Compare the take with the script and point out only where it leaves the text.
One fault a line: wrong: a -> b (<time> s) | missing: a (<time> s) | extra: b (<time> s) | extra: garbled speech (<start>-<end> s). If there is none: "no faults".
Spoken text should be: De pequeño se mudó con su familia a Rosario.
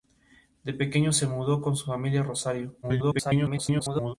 extra: garbled speech (2.8-4.1 s)